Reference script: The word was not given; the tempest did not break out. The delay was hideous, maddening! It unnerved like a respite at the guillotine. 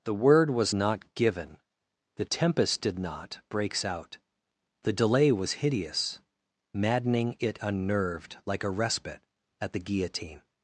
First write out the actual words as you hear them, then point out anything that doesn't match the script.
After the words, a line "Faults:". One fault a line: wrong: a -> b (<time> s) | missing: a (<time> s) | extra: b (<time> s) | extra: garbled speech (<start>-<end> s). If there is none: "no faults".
The word was not given; the tempest did not breaks out. The delay was hideous, maddening! It unnerved like a respite at the guillotine.
Faults:
wrong: break -> breaks (3.5 s)